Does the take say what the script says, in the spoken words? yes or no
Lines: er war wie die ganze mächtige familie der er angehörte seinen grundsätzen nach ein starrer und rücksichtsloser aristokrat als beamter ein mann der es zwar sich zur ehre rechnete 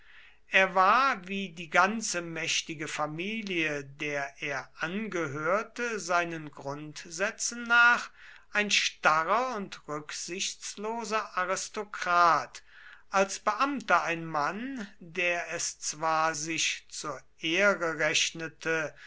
yes